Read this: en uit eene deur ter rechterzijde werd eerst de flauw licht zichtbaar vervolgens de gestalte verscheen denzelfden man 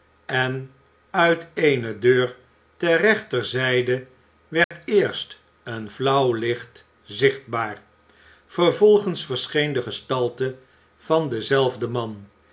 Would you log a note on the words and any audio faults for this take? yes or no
yes